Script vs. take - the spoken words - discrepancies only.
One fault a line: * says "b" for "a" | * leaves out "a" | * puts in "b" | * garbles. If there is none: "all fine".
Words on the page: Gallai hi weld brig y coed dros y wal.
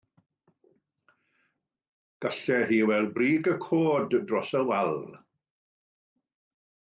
all fine